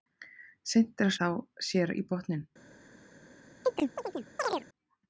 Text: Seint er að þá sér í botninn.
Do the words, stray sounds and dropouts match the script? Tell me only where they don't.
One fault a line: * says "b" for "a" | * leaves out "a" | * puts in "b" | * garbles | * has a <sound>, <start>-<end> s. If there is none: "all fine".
* has a chirp, 3.6-4.7 s